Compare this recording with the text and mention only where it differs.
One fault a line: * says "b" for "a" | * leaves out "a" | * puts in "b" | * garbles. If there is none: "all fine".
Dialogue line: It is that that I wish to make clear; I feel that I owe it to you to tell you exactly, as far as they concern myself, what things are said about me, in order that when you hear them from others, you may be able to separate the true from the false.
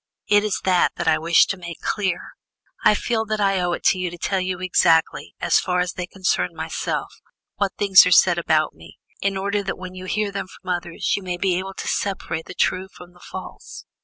all fine